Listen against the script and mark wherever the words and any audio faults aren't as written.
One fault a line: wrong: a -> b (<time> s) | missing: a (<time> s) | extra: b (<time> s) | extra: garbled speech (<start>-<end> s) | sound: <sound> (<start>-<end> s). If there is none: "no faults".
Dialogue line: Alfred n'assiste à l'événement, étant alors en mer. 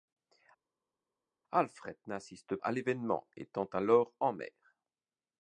no faults